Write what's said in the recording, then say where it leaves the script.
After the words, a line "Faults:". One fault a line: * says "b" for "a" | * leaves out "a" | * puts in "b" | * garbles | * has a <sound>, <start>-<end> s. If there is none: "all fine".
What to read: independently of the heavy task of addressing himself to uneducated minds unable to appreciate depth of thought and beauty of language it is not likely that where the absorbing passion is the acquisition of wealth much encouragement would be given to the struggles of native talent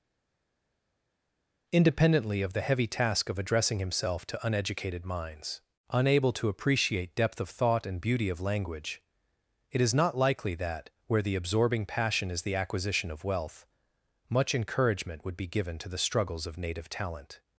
independently of the heavy task of addressing himself to uneducated minds unable to appreciate depth of thought and beauty of language it is not likely that where the absorbing passion is the acquisition of wealth much encouragement would be given to the struggles of native talent
Faults:
all fine